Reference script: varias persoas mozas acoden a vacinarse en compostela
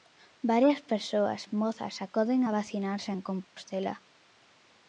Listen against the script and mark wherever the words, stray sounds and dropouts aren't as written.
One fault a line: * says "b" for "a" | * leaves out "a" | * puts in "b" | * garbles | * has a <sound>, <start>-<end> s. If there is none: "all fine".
* has a dropout, 3.4-3.6 s